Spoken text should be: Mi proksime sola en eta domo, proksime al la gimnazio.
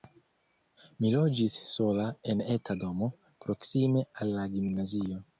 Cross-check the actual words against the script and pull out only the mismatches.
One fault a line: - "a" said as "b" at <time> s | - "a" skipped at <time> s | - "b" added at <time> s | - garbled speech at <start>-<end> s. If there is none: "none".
- "proksime" said as "loĝis" at 1.1 s